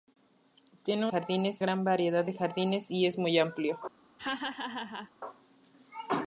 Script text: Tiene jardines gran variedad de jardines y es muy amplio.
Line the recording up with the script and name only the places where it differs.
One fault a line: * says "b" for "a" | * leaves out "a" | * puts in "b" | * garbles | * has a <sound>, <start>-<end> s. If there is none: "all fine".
* has a laugh, 4.2-5.1 s